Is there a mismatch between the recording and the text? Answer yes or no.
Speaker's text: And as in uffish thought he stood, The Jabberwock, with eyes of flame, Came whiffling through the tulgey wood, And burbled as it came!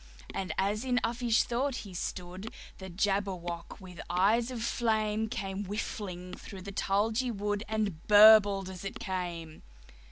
no